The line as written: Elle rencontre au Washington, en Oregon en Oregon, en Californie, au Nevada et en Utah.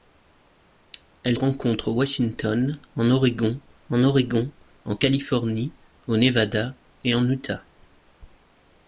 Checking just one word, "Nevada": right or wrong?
right